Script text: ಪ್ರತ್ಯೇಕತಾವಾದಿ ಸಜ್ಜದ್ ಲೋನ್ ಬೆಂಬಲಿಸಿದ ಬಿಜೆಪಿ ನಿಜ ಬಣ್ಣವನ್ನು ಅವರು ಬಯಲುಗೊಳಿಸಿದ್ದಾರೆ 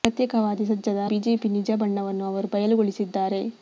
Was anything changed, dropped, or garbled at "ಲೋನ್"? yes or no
yes